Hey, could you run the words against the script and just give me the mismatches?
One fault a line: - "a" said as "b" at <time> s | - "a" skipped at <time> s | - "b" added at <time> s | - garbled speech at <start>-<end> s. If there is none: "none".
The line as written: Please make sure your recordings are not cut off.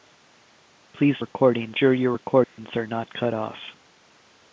- "make" said as "recordings" at 1.2 s